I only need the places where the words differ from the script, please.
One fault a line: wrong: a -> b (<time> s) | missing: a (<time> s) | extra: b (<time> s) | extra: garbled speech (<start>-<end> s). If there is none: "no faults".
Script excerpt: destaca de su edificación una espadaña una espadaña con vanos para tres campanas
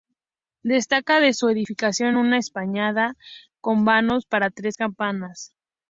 missing: una espadaña (3.1 s)